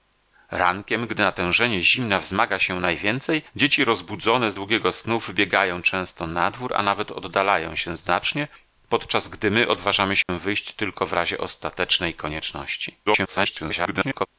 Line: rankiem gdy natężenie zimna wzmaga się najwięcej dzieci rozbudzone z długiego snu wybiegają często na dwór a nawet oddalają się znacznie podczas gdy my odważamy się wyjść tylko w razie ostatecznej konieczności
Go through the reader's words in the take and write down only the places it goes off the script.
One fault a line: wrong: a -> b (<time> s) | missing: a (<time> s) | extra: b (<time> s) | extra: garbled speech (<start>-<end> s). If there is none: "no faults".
extra: garbled speech (13.1-14.3 s)